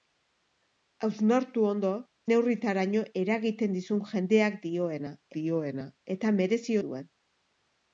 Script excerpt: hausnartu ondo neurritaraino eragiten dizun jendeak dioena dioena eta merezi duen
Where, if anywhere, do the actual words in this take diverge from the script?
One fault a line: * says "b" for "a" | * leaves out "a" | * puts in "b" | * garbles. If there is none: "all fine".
all fine